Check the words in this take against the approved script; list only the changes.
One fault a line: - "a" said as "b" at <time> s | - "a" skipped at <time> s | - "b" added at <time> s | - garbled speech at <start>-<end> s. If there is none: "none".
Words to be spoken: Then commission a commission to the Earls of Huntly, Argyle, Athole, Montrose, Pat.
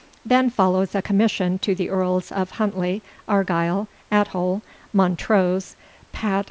- "commission" said as "follows" at 0.5 s